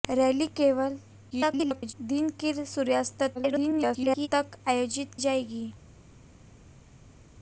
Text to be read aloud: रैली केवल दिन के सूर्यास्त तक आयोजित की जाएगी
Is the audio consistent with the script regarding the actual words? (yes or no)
no